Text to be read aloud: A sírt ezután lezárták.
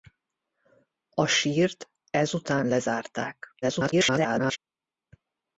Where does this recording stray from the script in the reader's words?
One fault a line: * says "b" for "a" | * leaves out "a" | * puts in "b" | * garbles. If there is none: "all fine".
* garbles